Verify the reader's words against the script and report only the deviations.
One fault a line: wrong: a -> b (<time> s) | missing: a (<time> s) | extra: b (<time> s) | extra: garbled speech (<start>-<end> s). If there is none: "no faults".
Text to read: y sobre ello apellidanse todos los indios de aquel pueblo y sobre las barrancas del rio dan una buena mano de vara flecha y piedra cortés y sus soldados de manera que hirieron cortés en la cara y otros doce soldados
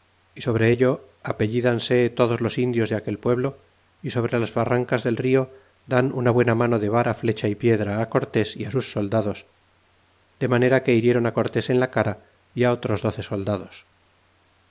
no faults